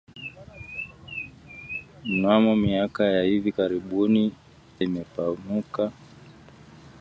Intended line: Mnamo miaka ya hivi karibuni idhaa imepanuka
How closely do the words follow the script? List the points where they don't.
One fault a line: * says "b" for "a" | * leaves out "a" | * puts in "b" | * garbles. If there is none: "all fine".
* leaves out "idhaa"